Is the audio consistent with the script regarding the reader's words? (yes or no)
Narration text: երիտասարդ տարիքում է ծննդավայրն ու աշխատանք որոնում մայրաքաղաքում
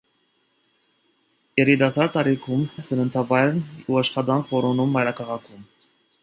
yes